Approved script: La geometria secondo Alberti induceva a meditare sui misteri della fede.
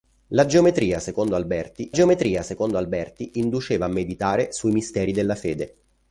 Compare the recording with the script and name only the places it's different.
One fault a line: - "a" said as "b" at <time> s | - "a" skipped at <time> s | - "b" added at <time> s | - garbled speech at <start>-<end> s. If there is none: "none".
- "geometria secondo Alberti" added at 1.9 s